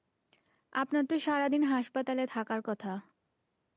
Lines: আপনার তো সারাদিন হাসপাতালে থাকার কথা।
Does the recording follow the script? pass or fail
pass